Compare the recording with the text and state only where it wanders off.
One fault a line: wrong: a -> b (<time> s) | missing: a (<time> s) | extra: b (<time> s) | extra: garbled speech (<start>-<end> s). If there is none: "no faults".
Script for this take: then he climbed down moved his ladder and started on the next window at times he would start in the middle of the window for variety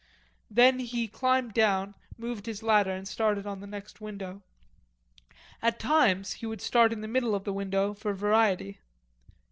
no faults